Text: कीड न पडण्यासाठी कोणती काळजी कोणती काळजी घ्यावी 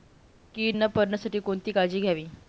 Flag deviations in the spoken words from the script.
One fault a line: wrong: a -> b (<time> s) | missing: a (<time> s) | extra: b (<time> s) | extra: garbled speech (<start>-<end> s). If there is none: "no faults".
missing: कोणती काळजी (2.0 s)